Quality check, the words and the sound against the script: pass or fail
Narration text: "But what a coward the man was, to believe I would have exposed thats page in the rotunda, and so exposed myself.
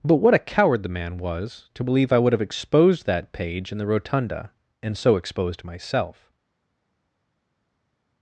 fail